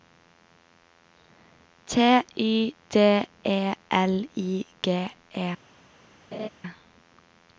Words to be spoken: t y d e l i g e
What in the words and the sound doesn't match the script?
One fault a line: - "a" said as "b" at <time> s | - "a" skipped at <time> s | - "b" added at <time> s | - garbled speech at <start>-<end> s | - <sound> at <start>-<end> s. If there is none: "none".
- laugh at 6.3-6.5 s